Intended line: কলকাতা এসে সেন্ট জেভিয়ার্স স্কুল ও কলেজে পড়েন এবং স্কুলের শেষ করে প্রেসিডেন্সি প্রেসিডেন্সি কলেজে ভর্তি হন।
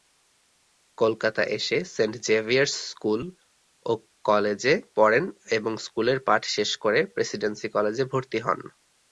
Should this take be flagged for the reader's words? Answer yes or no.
yes